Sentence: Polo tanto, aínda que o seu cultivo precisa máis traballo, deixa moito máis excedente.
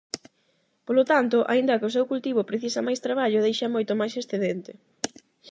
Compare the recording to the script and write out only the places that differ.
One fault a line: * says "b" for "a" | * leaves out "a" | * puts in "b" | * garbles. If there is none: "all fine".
all fine